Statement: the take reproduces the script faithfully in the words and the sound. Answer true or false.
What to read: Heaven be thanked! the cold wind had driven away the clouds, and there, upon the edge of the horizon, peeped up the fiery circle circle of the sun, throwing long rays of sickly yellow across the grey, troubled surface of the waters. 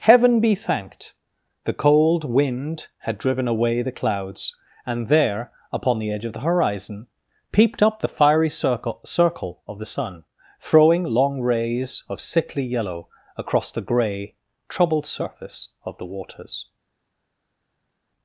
true